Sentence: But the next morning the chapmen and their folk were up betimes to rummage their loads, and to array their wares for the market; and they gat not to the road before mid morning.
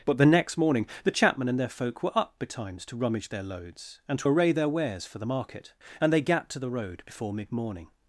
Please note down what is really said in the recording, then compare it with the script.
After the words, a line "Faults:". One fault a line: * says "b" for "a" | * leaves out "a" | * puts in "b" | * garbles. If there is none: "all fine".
But the next morning the chapmen and their folk were up betimes to rummage their loads, and to array their wares for the market; and they gat to the road before mid morning.
Faults:
* leaves out "not"